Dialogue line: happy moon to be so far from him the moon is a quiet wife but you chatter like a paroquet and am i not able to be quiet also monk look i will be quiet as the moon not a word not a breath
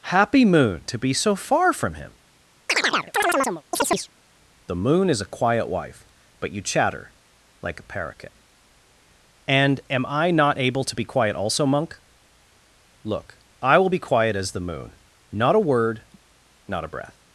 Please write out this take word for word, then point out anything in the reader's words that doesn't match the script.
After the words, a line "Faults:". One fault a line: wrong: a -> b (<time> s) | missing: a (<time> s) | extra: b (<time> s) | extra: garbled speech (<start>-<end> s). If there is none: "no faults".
happy moon to be so far from him the moon is a quiet wife but you chatter like a paroquet and am i not able to be quiet also monk look i will be quiet as the moon not a word not a breath
Faults:
no faults